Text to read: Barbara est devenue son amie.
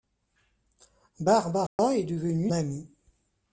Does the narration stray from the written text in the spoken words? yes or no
yes